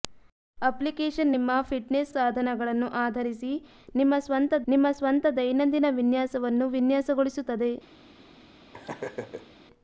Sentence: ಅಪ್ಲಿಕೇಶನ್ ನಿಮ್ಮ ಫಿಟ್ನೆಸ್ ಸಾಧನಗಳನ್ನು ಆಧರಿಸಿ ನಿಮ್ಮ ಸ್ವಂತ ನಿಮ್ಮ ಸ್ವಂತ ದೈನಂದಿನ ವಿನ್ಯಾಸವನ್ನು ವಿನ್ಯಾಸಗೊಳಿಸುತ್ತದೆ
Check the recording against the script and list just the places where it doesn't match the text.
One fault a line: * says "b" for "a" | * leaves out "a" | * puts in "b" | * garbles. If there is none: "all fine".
all fine